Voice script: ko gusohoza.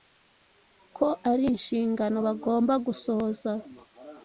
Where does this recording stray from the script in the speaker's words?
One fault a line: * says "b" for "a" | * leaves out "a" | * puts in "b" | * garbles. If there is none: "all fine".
* puts in "ari inshingano bagomba"